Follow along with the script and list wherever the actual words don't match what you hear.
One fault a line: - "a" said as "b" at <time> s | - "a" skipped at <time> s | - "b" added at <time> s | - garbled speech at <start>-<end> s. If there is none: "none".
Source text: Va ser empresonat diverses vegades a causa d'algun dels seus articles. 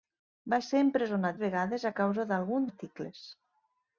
- "diverses" skipped at 1.4 s
- "dels seus" skipped at 2.7 s